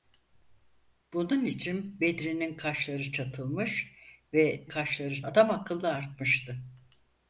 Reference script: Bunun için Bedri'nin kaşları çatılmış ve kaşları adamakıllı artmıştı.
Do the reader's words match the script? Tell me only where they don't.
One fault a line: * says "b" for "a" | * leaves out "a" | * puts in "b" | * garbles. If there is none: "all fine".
all fine